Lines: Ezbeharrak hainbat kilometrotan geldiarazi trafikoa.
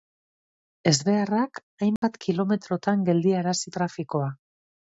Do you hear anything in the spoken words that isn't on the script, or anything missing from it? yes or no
no